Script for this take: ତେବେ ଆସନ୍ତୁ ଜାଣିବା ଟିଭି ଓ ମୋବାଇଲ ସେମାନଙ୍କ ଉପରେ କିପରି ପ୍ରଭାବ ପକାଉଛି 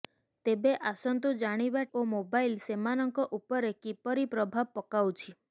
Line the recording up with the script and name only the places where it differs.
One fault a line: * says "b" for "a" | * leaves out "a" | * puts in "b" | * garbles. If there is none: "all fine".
* leaves out "ଟିଭି"